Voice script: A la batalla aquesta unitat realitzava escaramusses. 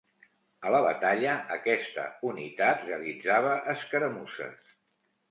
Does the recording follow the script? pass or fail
pass